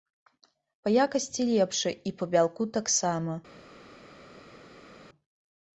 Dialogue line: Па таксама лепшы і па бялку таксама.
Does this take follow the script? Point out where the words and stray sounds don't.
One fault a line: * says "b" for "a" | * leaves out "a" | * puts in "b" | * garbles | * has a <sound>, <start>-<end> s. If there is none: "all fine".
* says "якасці" for "таксама"